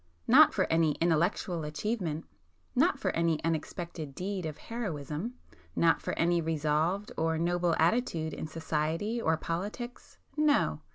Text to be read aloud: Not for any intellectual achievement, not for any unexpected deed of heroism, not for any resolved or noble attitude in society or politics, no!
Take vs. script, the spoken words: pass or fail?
pass